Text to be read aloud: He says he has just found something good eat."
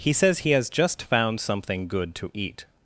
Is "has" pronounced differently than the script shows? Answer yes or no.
no